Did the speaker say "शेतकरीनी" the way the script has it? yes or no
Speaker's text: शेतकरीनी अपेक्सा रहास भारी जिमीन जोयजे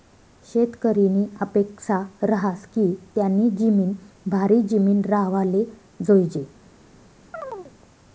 yes